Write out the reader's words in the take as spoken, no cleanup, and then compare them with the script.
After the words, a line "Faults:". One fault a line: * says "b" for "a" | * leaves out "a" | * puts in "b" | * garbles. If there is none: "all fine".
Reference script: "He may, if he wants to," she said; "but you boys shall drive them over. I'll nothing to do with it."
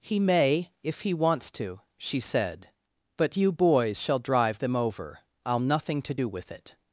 "He may, if he wants to," she said; "but you boys shall drive them over. I'll nothing to do with it."
Faults:
all fine